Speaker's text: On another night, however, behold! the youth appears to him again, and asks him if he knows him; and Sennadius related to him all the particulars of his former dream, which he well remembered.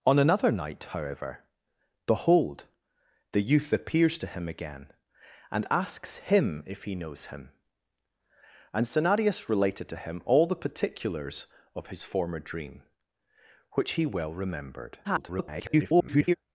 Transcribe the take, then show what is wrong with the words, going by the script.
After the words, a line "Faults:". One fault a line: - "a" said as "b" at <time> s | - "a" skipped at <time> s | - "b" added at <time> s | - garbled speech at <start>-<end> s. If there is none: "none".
On another night, however, behold! the youth appears to him again, and asks him if he knows him; and Sennadius related to him all the particulars of his former dream, which he well remembered. [garbled]
Faults:
- garbled speech at 15.0-16.3 s